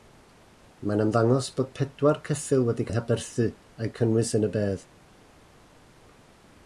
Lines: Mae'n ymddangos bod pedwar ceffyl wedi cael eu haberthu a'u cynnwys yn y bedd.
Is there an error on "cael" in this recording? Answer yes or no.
yes